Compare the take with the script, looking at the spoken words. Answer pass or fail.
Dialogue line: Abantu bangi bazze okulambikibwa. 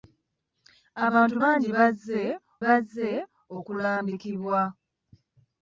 fail